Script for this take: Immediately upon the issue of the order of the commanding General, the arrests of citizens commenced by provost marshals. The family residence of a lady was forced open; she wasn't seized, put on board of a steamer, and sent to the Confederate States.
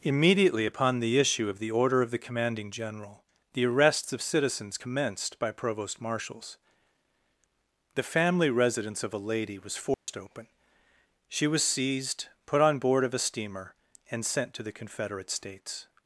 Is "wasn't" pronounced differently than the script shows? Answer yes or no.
yes